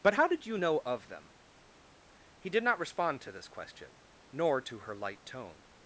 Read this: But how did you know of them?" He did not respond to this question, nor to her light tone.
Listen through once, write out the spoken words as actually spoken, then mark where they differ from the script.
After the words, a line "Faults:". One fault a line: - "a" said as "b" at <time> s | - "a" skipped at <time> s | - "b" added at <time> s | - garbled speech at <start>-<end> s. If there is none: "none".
But how did you know of them?" He did not respond to this question, nor to her light tone.
Faults:
none